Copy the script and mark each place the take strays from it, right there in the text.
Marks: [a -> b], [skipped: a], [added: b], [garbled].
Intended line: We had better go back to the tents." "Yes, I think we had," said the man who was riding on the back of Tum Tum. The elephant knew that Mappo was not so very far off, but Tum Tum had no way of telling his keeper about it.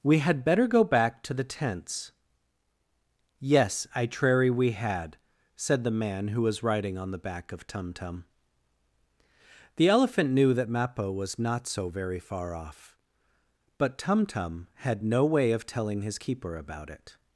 We had better go back to the tents." "Yes, I [think -> trary] we had," said the man who was riding on the back of Tum Tum. The elephant knew that Mappo was not so very far off, but Tum Tum had no way of telling his keeper about it.